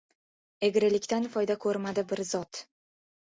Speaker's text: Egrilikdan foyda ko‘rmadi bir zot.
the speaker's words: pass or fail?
pass